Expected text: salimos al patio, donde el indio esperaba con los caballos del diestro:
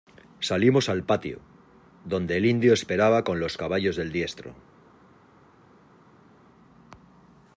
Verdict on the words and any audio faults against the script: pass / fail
pass